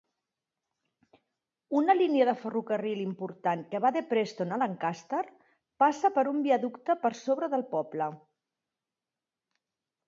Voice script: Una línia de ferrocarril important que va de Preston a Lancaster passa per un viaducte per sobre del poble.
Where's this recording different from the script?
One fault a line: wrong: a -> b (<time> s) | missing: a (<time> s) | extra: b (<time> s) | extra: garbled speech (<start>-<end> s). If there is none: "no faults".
no faults